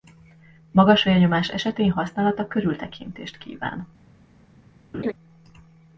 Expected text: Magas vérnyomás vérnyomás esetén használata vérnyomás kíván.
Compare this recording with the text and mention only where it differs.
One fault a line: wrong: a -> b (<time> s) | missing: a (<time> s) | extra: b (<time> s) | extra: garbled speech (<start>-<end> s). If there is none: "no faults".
missing: vérnyomás (1.5 s)
wrong: vérnyomás -> körültekintést (2.5 s)